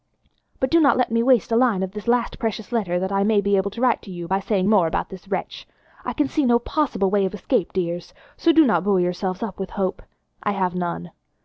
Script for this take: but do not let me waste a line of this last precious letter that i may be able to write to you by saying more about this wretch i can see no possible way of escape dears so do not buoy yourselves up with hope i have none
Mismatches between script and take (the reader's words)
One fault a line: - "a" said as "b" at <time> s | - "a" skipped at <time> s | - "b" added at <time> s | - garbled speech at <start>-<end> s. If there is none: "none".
none